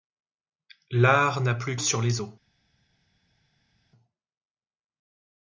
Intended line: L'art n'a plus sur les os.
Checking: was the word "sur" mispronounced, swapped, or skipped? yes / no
no